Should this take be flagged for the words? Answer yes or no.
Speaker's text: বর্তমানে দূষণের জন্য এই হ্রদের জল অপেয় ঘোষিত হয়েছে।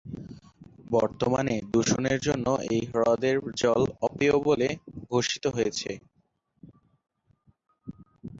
yes